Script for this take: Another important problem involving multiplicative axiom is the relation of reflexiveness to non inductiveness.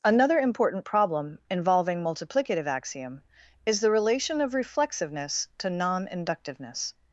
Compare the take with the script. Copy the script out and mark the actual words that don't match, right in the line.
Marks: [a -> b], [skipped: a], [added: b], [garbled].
Another important problem involving multiplicative axiom is the relation of reflexiveness to non inductiveness.